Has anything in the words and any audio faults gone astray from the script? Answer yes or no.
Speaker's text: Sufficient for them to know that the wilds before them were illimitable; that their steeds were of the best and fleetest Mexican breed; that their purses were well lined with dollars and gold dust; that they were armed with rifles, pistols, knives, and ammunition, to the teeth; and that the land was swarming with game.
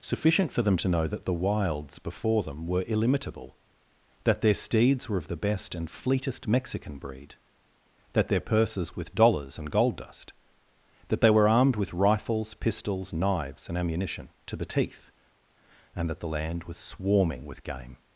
yes